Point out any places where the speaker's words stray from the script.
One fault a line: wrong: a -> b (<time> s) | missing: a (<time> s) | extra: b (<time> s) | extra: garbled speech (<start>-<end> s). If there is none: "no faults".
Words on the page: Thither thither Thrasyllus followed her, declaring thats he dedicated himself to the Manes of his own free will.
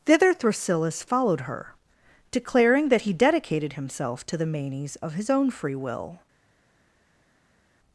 missing: thither (0.3 s)
wrong: thats -> that (2.9 s)